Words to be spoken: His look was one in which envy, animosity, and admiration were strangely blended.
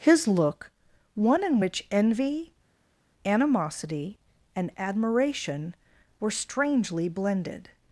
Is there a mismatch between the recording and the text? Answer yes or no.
yes